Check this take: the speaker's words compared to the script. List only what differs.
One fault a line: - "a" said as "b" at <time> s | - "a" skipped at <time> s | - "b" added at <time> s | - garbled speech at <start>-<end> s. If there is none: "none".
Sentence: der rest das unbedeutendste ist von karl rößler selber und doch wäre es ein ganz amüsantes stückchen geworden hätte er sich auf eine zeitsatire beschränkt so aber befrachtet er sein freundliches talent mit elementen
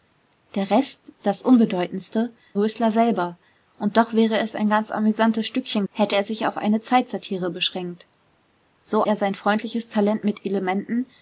- "ist von karl" skipped at 2.3 s
- "geworden" skipped at 5.9 s
- "aber befrachtet" skipped at 9.0 s